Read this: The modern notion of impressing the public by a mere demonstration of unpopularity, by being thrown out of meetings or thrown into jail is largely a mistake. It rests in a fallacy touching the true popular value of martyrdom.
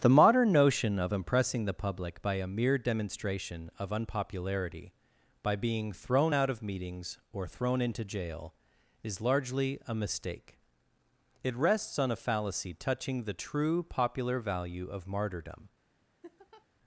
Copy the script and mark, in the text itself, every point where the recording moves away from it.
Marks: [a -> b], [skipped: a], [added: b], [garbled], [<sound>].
The modern notion of impressing the public by a mere demonstration of unpopularity, by being thrown out of meetings or thrown into jail is largely a mistake. It rests [in -> on] a fallacy touching the true popular value of martyrdom. [laugh]